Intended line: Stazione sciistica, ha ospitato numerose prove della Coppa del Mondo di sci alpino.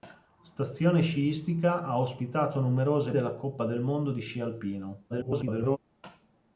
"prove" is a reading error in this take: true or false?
true